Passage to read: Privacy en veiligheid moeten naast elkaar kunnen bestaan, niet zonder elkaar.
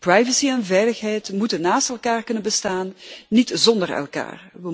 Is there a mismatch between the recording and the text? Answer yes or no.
no